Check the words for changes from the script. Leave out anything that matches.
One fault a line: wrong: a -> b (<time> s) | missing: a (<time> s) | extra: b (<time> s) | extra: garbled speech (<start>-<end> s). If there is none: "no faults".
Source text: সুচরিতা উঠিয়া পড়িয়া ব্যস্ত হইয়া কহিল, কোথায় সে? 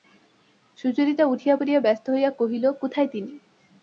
wrong: সে -> তিনি (3.1 s)